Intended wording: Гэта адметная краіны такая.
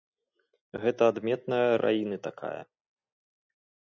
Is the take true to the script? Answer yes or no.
yes